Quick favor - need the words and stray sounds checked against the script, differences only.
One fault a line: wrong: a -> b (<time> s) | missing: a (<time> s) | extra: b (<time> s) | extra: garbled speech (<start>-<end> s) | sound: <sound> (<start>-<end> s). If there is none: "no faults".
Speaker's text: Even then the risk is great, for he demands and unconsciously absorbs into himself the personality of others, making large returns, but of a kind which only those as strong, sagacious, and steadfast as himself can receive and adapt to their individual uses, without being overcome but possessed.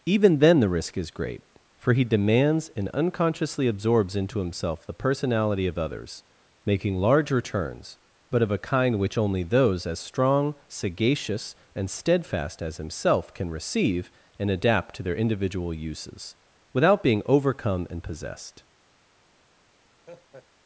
wrong: but -> and (17.9 s)
sound: laugh (20.0-20.5 s)